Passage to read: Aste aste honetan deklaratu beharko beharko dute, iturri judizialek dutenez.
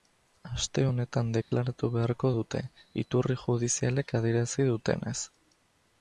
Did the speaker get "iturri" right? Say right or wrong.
right